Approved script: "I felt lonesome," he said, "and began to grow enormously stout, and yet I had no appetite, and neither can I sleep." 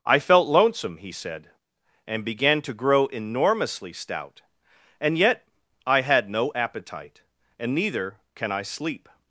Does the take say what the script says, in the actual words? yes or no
yes